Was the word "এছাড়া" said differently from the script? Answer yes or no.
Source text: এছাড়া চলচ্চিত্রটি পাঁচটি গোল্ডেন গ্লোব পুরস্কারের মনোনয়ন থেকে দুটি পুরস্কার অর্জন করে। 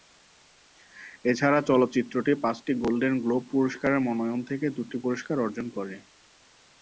no